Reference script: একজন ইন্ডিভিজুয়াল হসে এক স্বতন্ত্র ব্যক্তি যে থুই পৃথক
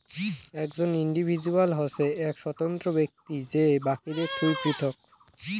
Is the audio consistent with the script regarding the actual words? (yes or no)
no